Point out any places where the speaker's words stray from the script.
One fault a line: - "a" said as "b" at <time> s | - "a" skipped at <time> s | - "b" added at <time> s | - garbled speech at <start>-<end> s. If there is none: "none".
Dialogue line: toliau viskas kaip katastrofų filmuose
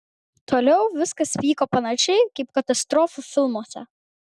- "vyko panašiai" added at 1.4 s